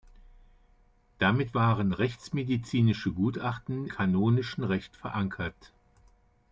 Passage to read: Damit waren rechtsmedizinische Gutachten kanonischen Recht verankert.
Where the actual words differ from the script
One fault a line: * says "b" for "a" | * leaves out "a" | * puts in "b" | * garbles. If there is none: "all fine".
all fine